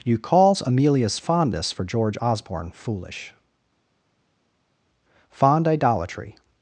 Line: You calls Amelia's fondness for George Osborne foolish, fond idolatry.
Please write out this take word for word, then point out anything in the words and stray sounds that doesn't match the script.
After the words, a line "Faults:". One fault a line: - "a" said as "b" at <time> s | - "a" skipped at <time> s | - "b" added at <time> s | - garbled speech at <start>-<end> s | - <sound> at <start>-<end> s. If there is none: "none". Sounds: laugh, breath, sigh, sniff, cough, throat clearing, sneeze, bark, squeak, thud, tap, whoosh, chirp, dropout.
You calls Amelia's fondness for George Osborne foolish, fond idolatry.
Faults:
none